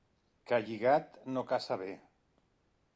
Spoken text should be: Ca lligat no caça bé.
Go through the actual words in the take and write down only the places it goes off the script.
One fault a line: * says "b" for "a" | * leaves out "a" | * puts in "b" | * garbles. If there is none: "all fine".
all fine